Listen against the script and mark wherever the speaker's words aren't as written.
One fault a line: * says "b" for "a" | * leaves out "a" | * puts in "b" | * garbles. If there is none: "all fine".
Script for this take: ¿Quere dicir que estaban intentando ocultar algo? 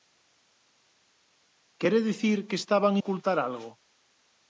* leaves out "intentando"